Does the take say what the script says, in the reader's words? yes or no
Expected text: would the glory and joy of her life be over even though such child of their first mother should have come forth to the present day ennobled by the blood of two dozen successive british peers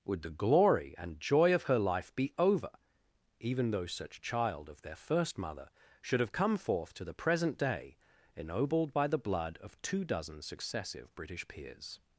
yes